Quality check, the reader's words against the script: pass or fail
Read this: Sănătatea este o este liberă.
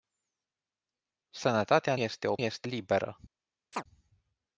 pass